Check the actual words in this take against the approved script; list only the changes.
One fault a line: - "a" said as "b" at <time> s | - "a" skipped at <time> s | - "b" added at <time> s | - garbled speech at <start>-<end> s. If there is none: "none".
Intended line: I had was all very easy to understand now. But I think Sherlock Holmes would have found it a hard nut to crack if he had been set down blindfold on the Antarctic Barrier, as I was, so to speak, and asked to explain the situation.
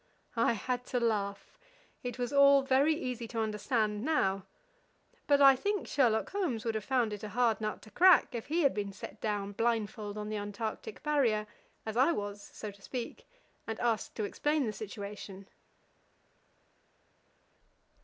- "to laugh it" added at 0.8 s